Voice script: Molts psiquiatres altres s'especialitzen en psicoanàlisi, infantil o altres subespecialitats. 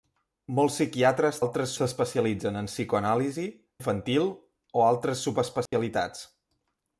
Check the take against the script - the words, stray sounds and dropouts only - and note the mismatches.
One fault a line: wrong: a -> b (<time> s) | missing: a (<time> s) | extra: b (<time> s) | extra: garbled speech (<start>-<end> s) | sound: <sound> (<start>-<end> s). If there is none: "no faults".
sound: dropout (5.7-5.7 s)